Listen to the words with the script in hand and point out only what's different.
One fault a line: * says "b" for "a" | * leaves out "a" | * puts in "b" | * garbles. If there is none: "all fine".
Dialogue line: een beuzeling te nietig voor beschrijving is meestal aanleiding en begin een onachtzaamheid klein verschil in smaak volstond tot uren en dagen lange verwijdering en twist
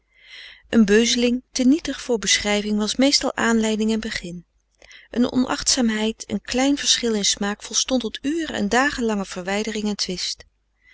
* says "was" for "is"
* puts in "een"